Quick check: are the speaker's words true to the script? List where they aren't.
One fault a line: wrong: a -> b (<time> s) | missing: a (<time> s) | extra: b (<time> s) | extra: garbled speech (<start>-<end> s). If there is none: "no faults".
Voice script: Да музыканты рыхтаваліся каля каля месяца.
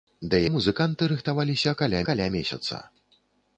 no faults